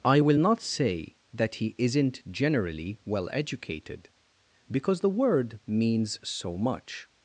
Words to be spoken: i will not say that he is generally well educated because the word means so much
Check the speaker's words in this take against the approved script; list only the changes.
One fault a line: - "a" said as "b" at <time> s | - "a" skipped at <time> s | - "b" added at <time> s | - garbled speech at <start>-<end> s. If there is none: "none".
- "is" said as "isn't" at 1.8 s